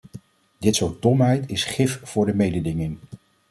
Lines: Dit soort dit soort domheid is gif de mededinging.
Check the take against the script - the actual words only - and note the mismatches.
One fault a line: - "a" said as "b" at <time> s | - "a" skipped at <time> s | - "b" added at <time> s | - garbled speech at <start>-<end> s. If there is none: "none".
- "dit soort" skipped at 1.0 s
- "voor" added at 2.0 s